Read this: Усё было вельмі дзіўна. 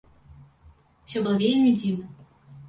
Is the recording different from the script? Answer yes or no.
no